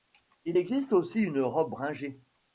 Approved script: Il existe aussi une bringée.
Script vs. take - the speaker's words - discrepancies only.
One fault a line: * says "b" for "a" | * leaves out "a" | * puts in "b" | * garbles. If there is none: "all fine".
* puts in "robe"